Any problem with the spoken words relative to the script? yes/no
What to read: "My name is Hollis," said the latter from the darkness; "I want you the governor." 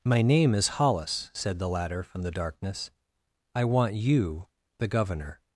no